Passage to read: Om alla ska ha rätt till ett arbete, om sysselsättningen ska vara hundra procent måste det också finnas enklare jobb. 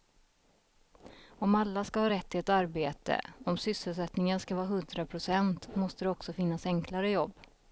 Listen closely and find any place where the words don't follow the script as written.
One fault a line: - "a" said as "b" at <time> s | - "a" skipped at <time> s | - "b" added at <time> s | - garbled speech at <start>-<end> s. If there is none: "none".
none